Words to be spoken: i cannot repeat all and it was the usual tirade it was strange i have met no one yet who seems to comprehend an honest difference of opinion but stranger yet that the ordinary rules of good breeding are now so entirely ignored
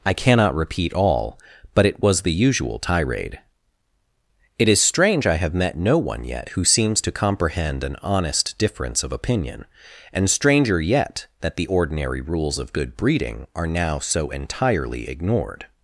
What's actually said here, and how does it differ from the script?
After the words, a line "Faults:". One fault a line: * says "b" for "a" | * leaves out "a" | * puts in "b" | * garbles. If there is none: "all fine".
i cannot repeat all but it was the usual tirade it is strange i have met no one yet who seems to comprehend an honest difference of opinion and stranger yet that the ordinary rules of good breeding are now so entirely ignored
Faults:
* says "but" for "and"
* says "is" for "was"
* says "and" for "but"